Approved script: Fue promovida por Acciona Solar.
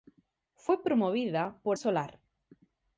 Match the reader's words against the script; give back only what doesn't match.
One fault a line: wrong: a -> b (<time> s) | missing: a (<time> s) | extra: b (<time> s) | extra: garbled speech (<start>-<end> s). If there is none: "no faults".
missing: Acciona (1.8 s)